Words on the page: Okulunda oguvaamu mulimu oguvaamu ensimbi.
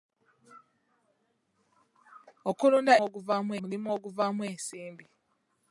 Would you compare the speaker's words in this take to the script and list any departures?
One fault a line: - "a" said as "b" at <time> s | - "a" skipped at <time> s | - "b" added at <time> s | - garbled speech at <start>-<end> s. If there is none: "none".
none